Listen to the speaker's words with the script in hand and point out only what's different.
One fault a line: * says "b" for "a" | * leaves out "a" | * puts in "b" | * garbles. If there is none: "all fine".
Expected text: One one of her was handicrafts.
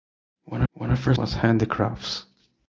all fine